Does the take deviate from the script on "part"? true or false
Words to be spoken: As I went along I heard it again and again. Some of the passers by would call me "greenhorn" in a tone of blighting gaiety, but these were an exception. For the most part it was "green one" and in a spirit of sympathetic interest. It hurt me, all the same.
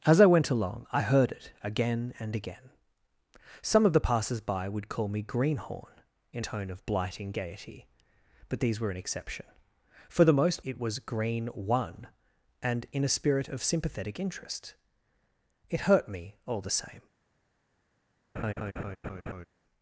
true